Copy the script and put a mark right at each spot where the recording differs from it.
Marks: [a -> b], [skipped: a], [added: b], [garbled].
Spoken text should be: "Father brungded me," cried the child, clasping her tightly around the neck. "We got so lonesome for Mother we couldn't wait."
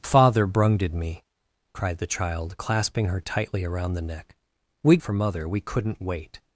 "Father brungded me," cried the child, clasping her tightly around the neck. "We [skipped: got so lonesome] for Mother we couldn't wait."